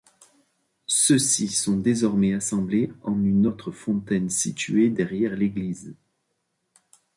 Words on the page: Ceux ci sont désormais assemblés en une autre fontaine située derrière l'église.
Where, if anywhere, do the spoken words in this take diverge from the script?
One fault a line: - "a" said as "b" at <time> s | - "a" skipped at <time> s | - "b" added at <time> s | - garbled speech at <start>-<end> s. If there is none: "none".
none